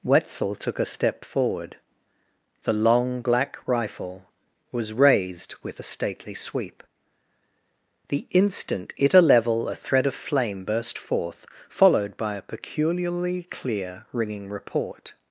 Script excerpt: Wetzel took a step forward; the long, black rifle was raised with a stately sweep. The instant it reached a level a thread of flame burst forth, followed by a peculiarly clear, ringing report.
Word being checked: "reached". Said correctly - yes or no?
no